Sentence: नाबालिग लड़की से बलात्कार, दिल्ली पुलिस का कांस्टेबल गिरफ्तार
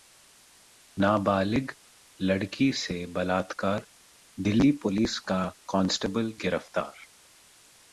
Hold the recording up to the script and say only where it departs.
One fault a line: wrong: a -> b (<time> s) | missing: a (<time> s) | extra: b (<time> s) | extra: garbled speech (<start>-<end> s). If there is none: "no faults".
no faults